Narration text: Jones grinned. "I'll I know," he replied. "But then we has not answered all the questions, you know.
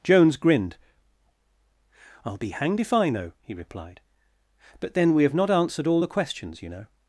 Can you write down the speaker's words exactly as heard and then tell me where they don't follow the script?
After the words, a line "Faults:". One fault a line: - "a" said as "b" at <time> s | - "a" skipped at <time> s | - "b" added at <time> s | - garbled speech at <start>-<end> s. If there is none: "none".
Jones grinned. "I'll be hanged if I know," he replied. "But then we have not answered all the questions, you know.
Faults:
- "be hanged if" added at 2.4 s
- "has" said as "have" at 5.2 s